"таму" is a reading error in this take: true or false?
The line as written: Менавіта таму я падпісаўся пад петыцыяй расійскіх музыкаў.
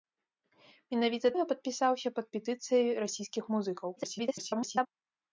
true